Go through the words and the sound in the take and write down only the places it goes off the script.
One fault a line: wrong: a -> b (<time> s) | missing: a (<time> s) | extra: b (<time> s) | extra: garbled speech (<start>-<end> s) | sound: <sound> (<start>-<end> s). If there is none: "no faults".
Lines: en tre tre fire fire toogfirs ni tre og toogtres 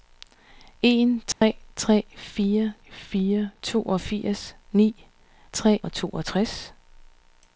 sound: dropout (1.3-1.4 s)